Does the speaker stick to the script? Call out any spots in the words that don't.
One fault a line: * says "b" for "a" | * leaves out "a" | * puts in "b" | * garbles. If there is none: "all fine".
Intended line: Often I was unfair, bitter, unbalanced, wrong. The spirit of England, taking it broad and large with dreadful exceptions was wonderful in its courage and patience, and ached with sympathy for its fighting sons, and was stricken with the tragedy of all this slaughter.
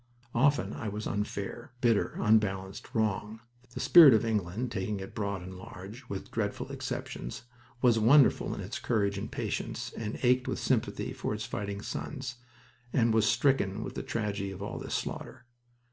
all fine